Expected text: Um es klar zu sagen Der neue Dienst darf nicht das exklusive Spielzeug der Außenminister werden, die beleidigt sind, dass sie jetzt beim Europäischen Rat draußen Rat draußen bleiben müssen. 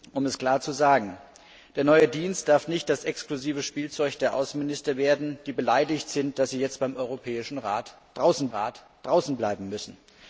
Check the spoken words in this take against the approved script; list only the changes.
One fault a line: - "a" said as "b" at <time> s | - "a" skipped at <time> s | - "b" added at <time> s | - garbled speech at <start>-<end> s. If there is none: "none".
none